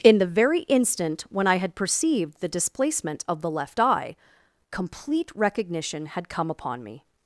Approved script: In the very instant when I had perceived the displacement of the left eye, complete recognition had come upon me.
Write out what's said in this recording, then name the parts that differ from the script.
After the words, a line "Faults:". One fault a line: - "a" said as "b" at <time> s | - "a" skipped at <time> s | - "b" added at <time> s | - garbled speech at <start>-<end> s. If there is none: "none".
In the very instant when I had perceived the displacement of the left eye, complete recognition had come upon me.
Faults:
none